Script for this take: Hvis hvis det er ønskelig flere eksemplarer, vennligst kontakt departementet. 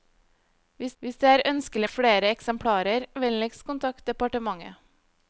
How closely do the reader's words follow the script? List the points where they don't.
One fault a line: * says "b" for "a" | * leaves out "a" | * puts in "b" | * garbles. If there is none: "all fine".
all fine